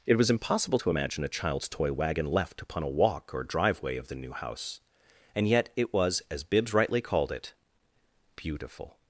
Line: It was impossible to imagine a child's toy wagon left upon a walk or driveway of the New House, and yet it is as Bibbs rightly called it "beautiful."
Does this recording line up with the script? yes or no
no